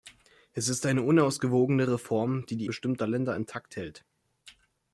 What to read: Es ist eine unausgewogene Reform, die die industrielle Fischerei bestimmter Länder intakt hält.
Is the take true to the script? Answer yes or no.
no